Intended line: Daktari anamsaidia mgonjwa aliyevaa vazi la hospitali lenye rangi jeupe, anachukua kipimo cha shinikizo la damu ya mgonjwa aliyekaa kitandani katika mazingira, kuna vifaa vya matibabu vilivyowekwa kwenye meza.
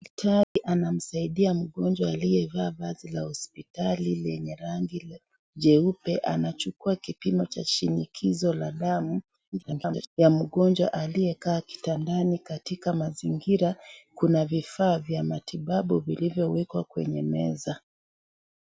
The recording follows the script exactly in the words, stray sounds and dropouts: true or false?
false